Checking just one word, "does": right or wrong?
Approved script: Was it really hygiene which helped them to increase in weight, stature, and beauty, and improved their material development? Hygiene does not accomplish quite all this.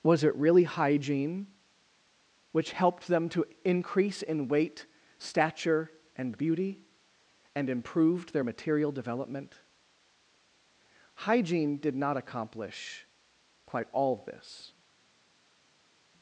wrong